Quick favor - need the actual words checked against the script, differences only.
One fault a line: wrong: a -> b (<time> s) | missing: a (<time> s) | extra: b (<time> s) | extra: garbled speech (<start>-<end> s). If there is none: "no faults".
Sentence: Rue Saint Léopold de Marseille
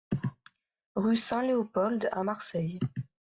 wrong: de -> à (2.1 s)